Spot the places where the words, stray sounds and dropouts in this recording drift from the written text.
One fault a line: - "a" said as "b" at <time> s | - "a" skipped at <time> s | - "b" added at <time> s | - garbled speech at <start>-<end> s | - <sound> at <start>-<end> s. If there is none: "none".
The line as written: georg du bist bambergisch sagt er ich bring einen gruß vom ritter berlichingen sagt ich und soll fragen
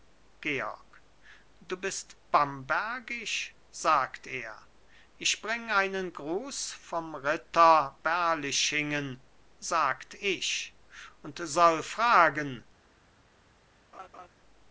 - laugh at 13.9-14.3 s